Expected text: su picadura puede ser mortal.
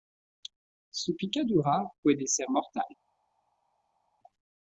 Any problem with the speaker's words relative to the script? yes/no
no